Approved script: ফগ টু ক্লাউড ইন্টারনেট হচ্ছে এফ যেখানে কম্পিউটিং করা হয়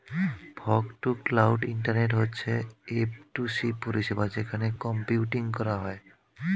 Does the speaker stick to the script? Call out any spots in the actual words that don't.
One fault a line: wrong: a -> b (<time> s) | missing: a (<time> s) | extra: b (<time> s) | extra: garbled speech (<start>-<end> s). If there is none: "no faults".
extra: টু সি পরিষেবা (3.3 s)